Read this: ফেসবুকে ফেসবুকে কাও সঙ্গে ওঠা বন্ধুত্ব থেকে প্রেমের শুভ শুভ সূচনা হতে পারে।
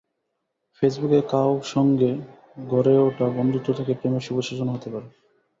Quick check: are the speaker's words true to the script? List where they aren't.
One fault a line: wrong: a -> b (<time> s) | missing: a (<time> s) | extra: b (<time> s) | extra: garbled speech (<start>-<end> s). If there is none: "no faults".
missing: ফেসবুকে (1.2 s)
extra: গড়ে (2.7 s)
missing: শুভ (4.4 s)